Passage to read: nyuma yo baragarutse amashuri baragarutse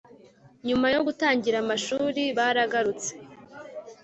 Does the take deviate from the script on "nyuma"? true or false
false